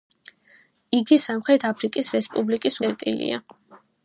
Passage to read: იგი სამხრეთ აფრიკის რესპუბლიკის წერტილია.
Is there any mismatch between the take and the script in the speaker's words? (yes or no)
no